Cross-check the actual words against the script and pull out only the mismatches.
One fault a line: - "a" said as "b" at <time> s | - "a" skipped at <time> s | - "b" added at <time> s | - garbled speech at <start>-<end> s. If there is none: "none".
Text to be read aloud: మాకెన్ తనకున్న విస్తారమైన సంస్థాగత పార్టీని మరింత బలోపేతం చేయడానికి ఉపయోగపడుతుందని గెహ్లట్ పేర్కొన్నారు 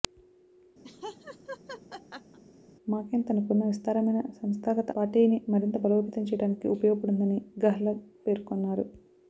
none